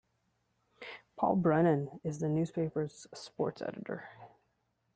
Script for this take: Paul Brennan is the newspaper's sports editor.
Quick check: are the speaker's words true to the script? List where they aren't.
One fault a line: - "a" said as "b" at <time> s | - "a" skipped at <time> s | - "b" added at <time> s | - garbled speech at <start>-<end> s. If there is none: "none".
none